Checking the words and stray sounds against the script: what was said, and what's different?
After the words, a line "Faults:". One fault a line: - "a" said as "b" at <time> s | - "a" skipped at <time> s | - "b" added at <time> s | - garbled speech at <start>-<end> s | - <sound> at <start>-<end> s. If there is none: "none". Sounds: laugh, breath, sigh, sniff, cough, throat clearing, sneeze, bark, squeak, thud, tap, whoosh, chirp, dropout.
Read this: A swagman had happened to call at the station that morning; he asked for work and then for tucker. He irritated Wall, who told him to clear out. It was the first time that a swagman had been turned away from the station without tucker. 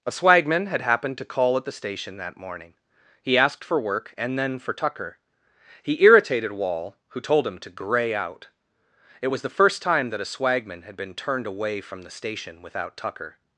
A swagman had happened to call at the station that morning; he asked for work and then for tucker. He irritated Wall, who told him to gray out. It was the first time that a swagman had been turned away from the station without tucker.
Faults:
- "clear" said as "gray" at 7.7 s